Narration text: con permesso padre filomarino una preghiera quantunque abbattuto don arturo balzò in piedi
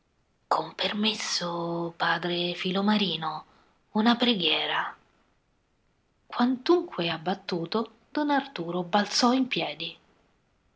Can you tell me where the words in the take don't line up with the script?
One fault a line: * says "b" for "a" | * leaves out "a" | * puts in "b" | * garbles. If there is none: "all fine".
all fine